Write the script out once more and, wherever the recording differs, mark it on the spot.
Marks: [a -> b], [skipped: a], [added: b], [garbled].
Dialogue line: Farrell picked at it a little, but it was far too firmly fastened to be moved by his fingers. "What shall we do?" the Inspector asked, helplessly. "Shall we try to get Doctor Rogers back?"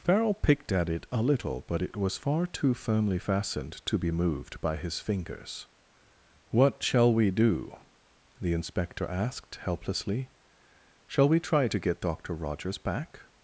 Farrell picked at it a little, but it was far too firmly fastened to be moved by his fingers. "What shall we do?" the Inspector asked, helplessly. "Shall we try to get Doctor Rogers back?"